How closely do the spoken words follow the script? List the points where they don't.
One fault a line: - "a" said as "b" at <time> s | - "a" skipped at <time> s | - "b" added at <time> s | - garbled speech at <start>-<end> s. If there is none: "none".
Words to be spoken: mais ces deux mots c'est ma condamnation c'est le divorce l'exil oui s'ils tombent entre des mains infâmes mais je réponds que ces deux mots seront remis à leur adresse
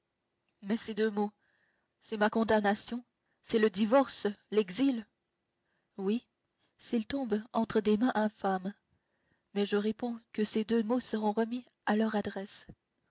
none